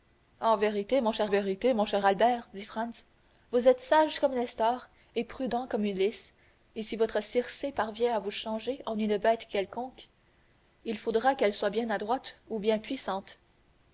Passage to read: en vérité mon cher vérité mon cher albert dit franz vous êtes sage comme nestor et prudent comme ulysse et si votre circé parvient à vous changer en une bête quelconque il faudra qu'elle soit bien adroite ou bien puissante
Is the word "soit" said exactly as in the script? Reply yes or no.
yes